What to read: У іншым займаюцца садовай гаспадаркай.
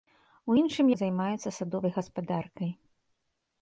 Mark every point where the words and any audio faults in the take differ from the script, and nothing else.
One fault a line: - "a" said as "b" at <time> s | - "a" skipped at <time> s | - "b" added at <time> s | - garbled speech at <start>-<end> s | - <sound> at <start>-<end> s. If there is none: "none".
none